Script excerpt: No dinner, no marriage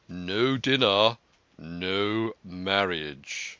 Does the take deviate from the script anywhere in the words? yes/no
no